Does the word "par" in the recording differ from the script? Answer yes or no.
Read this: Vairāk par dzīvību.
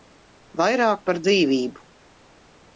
no